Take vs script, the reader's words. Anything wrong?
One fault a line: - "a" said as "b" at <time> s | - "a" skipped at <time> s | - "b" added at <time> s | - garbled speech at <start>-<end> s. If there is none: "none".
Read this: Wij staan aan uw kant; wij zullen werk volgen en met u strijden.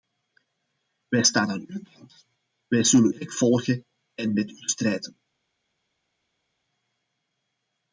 none